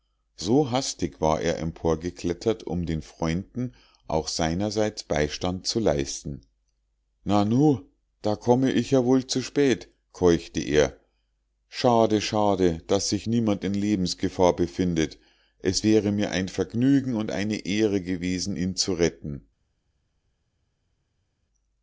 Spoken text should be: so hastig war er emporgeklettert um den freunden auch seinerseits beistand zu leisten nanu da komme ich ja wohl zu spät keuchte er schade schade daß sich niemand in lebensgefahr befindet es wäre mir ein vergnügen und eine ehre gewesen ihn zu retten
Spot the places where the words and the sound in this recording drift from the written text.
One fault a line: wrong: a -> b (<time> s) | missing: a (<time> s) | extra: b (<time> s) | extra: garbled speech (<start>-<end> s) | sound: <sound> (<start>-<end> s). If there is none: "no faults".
no faults